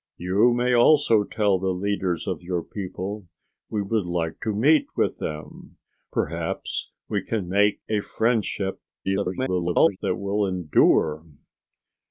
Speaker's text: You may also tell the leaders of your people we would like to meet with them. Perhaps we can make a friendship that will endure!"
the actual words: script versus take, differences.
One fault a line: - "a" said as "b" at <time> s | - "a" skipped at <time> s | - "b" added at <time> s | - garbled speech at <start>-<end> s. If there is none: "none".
- garbled speech at 9.0-10.0 s